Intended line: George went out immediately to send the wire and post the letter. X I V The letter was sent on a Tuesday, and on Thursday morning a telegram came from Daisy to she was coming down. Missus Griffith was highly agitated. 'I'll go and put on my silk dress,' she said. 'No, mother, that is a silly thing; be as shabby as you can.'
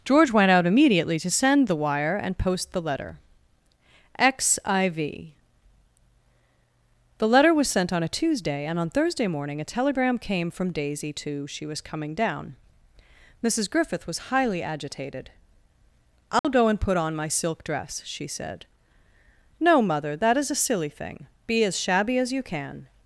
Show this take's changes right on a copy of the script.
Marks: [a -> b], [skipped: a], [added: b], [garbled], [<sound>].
George went out immediately to send the wire and post the letter. X I V The letter was sent on a Tuesday, and on Thursday morning a telegram came from Daisy to she was coming down. Missus Griffith was highly agitated. 'I'll [dropout] go and put on my silk dress,' she said. 'No, mother, that is a silly thing; be as shabby as you can.'